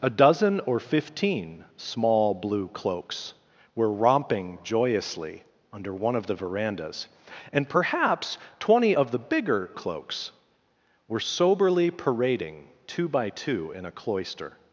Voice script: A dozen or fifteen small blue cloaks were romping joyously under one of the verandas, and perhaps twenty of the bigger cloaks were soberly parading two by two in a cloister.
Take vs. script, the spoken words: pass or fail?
pass